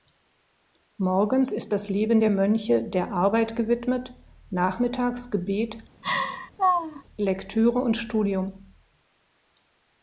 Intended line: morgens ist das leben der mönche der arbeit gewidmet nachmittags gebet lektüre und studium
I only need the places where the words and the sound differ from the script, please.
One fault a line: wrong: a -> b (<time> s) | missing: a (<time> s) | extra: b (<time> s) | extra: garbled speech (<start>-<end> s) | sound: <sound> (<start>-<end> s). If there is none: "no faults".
sound: laugh (6.0-7.0 s)